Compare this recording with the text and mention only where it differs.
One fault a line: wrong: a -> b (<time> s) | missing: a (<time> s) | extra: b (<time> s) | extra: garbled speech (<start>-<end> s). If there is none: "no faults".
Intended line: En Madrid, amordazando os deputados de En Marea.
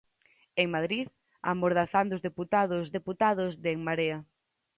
extra: deputados (3.0 s)